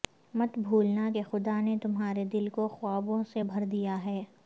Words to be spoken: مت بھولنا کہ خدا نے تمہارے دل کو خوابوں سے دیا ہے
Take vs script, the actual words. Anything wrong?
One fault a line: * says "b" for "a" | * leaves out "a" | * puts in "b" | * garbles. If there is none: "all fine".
* puts in "بھر"